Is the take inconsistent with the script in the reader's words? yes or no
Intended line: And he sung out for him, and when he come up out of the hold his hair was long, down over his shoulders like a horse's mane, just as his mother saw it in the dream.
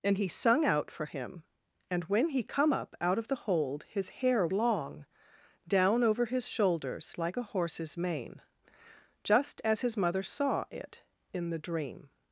yes